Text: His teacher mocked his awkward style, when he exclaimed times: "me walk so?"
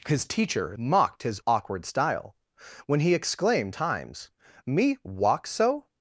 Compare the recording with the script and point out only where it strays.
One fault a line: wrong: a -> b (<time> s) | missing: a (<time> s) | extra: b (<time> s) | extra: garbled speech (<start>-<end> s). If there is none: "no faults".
no faults